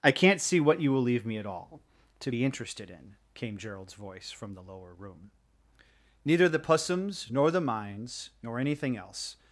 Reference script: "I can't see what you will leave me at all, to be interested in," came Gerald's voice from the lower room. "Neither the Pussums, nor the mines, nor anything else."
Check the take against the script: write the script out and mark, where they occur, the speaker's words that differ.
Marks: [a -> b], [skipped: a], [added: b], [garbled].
"I can't see what you will leave me at all, to be interested in," came Gerald's voice from the lower room. "Neither the Pussums, nor the mines, nor anything else."